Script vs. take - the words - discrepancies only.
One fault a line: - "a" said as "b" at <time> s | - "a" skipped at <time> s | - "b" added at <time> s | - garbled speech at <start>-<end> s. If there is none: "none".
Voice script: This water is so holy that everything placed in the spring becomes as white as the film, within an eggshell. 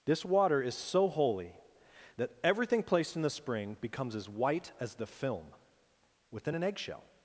none